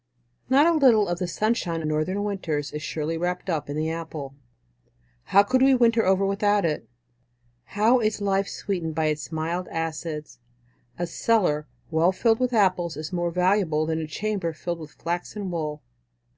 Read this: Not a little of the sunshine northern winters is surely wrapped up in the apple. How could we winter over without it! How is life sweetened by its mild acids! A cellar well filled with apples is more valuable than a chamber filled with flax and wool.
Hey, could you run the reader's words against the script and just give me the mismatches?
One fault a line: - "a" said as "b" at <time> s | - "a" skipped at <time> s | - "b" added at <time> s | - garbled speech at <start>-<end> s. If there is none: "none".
none